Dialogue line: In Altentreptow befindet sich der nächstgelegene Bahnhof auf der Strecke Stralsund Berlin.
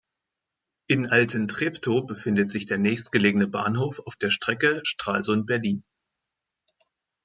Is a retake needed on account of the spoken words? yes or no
no